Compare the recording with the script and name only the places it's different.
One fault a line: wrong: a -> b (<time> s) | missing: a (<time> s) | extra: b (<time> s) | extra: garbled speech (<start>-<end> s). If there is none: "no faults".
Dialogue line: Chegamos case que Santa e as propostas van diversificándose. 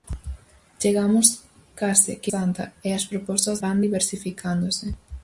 no faults